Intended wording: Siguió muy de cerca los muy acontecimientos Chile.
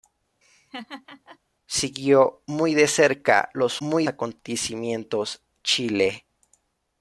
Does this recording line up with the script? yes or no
yes